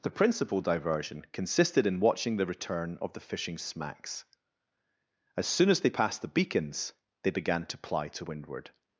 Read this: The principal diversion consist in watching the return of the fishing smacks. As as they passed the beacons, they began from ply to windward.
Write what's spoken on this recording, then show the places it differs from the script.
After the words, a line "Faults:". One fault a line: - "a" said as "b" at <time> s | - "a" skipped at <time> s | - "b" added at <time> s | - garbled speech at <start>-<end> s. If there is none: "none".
The principal diversion consisted in watching the return of the fishing smacks. As soon as they passed the beacons, they began to ply to windward.
Faults:
- "consist" said as "consisted" at 1.3 s
- "soon" added at 5.5 s
- "from" said as "to" at 7.6 s